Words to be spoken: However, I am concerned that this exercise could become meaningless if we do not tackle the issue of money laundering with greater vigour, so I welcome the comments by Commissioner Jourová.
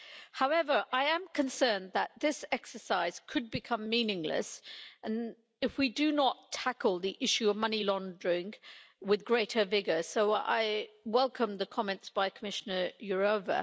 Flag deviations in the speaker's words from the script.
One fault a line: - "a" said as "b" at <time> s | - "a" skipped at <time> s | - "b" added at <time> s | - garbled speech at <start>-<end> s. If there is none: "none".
none